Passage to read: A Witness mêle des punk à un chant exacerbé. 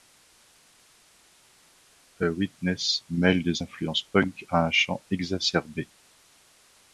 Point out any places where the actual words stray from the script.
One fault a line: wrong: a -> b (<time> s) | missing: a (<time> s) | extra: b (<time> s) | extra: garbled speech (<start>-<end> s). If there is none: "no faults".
extra: influences (3.6 s)